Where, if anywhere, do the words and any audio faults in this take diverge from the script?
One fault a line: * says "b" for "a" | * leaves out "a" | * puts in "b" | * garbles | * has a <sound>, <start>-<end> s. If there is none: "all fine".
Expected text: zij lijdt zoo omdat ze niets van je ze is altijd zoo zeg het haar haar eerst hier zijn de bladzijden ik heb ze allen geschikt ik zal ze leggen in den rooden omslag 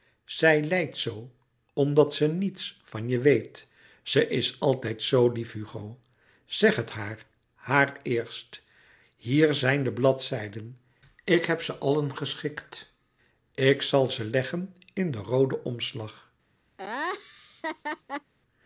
* puts in "weet"
* puts in "lief hugo"
* has a laugh, 16.8-18.3 s